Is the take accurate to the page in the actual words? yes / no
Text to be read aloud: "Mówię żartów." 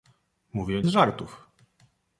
yes